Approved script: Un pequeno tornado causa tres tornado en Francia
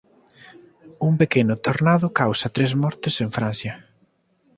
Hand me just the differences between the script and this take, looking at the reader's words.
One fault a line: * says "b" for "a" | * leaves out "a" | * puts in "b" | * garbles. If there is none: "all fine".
* says "mortes" for "tornado"